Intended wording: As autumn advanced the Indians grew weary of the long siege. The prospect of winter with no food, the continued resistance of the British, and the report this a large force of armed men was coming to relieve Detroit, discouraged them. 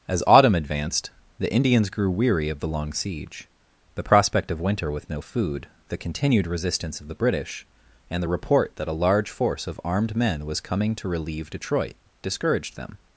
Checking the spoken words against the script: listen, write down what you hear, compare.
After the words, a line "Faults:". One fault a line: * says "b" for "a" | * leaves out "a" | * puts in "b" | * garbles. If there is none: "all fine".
As autumn advanced the Indians grew weary of the long siege. The prospect of winter with no food, the continued resistance of the British, and the report that a large force of armed men was coming to relieve Detroit, discouraged them.
Faults:
* says "that" for "this"